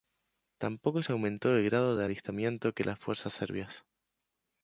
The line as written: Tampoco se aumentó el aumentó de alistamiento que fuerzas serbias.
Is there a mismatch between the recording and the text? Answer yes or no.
yes